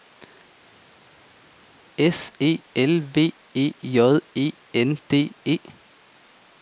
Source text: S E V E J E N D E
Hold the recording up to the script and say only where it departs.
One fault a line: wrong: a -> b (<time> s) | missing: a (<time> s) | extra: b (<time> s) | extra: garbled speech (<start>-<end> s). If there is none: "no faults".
extra: L (2.8 s)